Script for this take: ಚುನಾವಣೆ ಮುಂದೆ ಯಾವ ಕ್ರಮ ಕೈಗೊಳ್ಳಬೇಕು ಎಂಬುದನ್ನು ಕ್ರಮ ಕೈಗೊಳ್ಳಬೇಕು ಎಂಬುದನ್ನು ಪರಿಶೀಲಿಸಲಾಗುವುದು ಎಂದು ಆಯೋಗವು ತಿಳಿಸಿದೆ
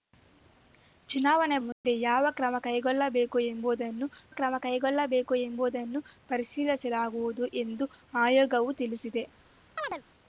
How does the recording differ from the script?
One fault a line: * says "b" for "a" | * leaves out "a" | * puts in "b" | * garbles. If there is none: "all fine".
all fine